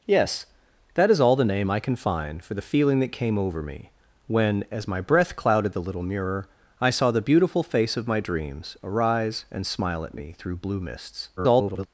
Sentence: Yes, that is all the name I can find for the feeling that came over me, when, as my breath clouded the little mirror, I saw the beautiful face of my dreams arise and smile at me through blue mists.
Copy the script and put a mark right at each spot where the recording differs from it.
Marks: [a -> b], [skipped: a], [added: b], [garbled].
Yes, that is all the name I can find for the feeling that came over me, when, as my breath clouded the little mirror, I saw the beautiful face of my dreams arise and smile at me through blue mists. [garbled]